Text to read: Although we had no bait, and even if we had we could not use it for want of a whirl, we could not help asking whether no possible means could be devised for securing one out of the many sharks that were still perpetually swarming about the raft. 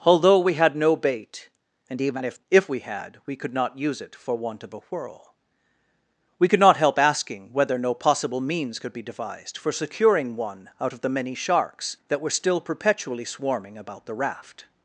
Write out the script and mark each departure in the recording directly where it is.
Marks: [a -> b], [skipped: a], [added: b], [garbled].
Although we had no bait, and even if [added: if] we had we could not use it for want of a whirl, we could not help asking whether no possible means could be devised for securing one out of the many sharks that were still perpetually swarming about the raft.